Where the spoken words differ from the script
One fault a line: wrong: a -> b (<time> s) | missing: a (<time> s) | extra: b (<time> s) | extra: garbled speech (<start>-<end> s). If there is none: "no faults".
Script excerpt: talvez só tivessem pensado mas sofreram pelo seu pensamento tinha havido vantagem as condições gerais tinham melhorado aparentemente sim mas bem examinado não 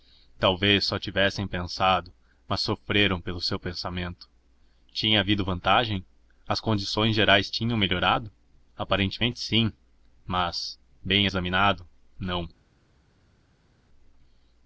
no faults